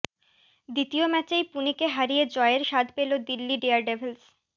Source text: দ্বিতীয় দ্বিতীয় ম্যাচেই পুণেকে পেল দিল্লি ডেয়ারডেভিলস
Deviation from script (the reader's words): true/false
true